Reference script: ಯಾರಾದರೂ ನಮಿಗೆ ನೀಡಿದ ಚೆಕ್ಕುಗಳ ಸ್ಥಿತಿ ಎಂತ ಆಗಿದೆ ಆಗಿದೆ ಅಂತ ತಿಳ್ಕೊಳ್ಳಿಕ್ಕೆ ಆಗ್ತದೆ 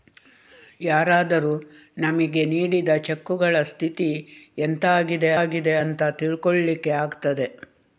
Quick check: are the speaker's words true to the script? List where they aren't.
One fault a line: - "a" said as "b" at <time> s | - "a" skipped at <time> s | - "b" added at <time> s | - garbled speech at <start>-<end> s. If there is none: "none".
none